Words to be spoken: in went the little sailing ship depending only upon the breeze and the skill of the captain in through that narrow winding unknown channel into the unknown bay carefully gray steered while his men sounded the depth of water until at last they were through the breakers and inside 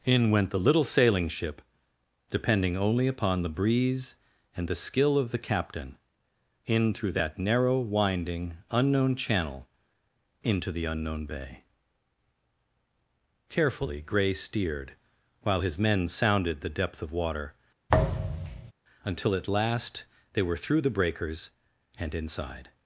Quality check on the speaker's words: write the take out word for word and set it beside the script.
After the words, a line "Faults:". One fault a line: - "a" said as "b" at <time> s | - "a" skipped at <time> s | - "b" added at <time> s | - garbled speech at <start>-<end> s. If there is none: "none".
in went the little sailing ship depending only upon the breeze and the skill of the captain in through that narrow winding unknown channel into the unknown bay carefully gray steered while his men sounded the depth of water until at last they were through the breakers and inside
Faults:
none